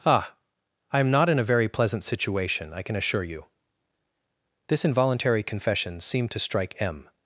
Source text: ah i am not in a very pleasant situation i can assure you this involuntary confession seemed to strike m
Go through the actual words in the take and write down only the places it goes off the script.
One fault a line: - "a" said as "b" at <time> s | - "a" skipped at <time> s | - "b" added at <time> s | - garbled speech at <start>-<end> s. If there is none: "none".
none